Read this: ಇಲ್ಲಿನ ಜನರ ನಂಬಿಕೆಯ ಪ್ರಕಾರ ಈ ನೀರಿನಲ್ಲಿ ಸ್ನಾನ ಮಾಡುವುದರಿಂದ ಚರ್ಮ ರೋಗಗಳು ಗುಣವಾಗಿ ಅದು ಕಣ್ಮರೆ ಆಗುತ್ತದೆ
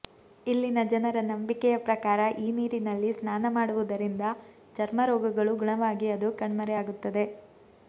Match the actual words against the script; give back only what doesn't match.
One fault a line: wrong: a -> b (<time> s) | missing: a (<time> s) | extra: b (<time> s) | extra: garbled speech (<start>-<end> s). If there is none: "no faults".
no faults